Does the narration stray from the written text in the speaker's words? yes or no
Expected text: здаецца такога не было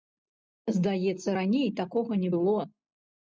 yes